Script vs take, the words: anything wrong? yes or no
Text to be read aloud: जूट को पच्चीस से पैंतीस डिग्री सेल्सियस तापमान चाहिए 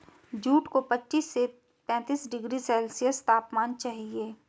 no